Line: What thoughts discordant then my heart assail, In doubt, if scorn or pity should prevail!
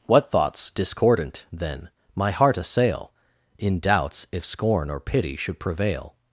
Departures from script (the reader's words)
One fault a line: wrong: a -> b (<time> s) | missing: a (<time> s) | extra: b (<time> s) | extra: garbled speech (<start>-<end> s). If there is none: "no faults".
wrong: doubt -> doubts (3.8 s)